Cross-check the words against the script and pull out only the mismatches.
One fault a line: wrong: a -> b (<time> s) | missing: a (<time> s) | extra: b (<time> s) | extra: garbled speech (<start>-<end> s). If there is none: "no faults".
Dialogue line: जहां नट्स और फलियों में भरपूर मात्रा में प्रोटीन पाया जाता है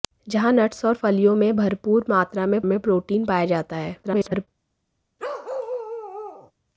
extra: में (2.6 s)
extra: garbled speech (4.0-4.5 s)